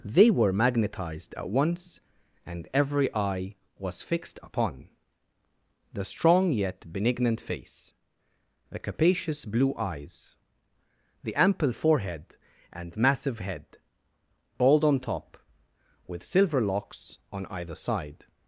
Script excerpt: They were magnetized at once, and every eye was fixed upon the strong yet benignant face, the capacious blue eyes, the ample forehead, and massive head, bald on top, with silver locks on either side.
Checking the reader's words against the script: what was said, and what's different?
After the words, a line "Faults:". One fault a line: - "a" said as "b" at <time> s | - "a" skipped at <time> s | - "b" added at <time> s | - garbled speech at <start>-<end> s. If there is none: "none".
They were magnetized at once, and every eye was fixed upon the strong yet benignant face, the capacious blue eyes, the ample forehead, and massive head, bald on top, with silver locks on either side.
Faults:
none